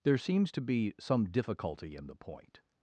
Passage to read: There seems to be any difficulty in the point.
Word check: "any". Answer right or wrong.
wrong